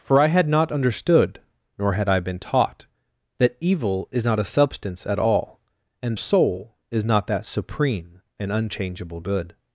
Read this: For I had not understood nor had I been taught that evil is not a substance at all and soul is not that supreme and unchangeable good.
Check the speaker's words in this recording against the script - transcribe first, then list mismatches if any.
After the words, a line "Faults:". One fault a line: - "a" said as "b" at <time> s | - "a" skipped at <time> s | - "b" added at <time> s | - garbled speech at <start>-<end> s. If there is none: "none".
For I had not understood nor had I been taught that evil is not a substance at all and soul is not that supreme and unchangeable good.
Faults:
none